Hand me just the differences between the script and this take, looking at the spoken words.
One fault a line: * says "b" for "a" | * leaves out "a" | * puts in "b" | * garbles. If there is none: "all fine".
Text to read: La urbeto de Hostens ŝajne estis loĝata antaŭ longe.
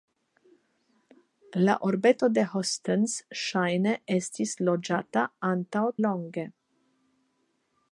all fine